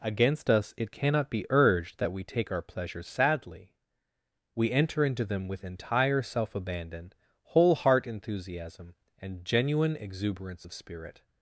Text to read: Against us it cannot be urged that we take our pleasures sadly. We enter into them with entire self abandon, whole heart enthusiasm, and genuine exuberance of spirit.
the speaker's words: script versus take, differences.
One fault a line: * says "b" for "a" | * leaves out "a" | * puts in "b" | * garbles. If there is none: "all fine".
all fine